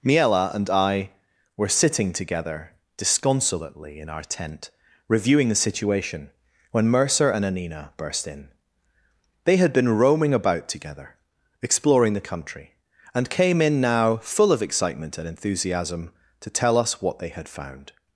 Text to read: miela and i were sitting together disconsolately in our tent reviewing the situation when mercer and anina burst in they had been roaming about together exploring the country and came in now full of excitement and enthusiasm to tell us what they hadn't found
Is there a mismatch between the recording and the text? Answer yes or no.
yes